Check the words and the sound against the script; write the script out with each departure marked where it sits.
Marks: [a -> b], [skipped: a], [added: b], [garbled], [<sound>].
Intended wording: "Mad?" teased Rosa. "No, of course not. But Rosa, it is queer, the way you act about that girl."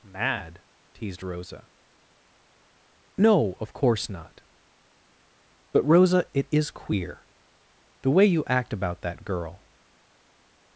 "Mad?" teased Rosa. "No, of course not. But Rosa, it is queer, the way you act about that girl."